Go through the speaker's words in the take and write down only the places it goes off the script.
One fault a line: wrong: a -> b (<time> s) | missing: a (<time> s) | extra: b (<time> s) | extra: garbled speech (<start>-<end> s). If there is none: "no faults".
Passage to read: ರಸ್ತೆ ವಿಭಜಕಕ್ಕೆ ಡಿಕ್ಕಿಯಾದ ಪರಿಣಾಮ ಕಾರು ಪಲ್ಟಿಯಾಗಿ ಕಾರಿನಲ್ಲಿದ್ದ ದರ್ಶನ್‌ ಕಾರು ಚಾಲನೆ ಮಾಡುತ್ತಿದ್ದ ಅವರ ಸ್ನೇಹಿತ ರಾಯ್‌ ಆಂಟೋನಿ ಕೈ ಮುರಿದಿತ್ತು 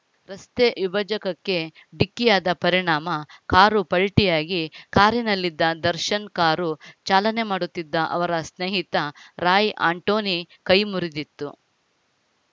no faults